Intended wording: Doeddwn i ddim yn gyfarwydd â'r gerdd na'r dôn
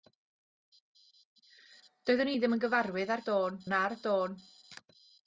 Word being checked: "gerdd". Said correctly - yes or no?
no